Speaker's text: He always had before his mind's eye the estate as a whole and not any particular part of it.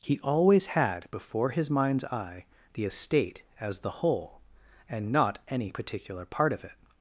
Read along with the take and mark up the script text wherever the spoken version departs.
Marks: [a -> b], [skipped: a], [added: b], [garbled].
He always had before his mind's eye the estate as [a -> the] whole and not any particular part of it.